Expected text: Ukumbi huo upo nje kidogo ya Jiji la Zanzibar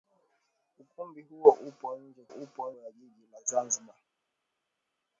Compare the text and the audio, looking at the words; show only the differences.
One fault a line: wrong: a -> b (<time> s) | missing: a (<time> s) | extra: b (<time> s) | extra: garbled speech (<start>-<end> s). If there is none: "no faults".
wrong: kidogo -> upo (2.3 s)